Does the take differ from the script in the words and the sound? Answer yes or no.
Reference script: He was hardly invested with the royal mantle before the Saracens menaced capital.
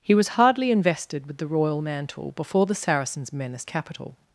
no